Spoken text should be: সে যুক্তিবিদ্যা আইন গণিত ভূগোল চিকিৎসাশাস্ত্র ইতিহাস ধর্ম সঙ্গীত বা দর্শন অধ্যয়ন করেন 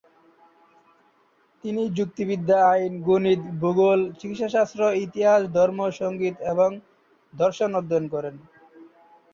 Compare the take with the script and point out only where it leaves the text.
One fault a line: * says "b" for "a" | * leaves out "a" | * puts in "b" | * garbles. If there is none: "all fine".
* says "তিনি" for "সে"
* says "এবং" for "বা"